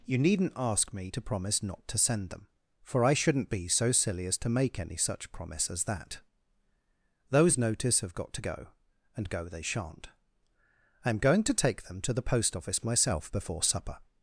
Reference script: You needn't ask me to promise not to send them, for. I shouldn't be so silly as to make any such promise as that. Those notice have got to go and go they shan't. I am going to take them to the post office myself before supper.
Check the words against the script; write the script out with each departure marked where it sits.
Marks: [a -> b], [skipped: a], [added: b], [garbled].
You needn't ask me to promise not to send them, for. I shouldn't be so silly as to make any such promise as that. Those notice have got to go and go they shan't. I am going to take them to the post office myself before supper.